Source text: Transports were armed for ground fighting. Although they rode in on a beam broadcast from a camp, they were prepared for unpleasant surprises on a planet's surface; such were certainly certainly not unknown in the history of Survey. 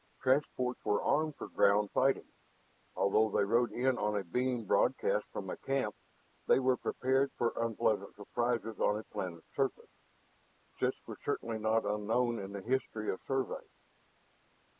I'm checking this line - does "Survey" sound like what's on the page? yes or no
yes